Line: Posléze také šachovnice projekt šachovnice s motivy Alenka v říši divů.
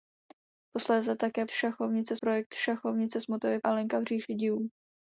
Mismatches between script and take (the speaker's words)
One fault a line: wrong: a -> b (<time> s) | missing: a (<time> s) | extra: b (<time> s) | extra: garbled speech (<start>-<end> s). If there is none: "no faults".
no faults